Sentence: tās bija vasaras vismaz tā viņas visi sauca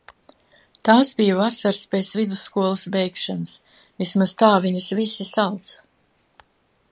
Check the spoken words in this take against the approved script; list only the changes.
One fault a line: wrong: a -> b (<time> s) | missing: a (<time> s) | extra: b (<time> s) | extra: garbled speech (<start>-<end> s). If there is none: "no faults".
extra: pēc vidusskolas beigšanas (1.9 s)